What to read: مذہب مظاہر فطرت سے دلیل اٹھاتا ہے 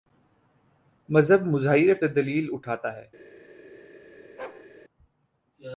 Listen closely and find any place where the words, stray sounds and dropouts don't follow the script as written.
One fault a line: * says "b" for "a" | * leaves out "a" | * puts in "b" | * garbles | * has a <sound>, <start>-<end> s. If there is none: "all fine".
* leaves out "فطرت"
* has a bark, 4.4-4.7 s